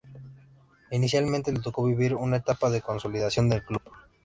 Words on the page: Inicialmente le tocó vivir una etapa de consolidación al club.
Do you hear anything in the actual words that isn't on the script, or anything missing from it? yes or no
yes